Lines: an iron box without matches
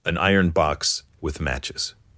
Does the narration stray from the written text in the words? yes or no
yes